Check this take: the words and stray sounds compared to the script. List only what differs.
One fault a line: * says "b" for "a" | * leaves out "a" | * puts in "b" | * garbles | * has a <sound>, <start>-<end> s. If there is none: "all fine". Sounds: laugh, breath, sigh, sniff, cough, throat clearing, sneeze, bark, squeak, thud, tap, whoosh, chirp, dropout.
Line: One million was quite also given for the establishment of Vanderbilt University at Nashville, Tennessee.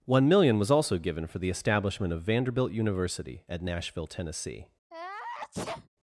* leaves out "quite"
* has a sneeze, 4.9-5.9 s